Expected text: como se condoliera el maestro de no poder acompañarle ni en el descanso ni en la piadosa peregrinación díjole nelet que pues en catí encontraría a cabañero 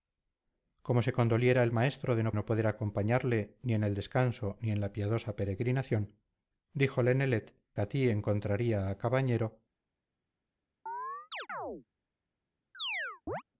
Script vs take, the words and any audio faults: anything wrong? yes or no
yes